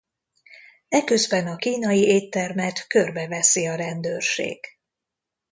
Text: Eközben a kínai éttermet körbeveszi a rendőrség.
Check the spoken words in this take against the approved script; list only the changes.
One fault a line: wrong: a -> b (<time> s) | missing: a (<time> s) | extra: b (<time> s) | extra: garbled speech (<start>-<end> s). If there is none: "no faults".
no faults